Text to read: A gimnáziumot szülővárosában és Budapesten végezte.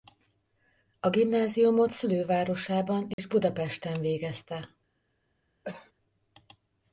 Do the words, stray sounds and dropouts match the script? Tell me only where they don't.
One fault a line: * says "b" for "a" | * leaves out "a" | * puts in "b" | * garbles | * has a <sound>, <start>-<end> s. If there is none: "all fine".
* has a dropout, 3.1-3.2 s
* has a cough, 5.6-5.9 s